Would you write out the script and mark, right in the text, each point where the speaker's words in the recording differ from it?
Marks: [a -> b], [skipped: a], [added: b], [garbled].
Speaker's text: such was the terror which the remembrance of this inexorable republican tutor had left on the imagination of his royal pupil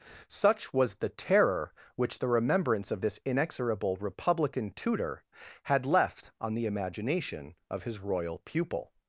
such was the terror which the remembrance of this inexorable republican tutor had left on the imagination of his royal pupil